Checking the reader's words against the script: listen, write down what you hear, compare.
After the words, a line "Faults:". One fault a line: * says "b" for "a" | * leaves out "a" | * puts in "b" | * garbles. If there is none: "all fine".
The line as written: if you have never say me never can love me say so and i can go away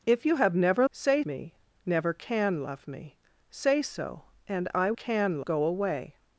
if you have never say me never can love me say so and i can go away
Faults:
all fine